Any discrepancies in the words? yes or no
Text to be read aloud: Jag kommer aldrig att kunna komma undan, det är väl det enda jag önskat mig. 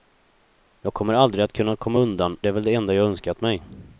no